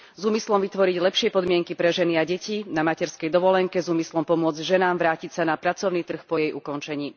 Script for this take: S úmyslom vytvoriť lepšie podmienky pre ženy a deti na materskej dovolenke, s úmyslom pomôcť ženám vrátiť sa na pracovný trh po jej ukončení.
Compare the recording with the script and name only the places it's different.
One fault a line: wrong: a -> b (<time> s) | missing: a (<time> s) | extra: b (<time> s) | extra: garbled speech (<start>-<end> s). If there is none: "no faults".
no faults